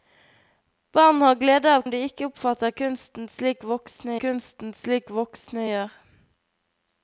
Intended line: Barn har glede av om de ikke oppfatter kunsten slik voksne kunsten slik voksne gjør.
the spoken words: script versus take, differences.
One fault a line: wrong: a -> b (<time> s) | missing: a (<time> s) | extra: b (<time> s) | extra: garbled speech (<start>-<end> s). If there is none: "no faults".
no faults